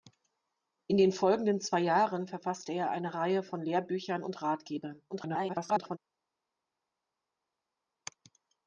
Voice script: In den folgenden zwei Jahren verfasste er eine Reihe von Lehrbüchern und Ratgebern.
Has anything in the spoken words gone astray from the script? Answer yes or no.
yes